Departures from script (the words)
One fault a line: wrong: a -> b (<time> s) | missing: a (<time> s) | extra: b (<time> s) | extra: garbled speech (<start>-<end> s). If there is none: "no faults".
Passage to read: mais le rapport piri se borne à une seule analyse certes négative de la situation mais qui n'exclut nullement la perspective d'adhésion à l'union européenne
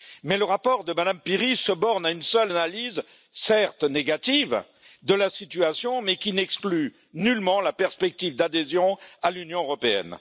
extra: de mme (0.8 s)